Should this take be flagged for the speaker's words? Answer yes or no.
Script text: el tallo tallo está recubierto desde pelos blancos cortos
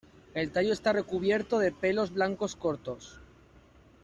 yes